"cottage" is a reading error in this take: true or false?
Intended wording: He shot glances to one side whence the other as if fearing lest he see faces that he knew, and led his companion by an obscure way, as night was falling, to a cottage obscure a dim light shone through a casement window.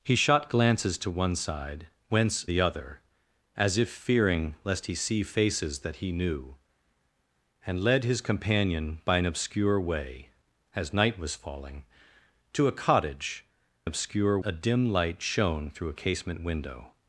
false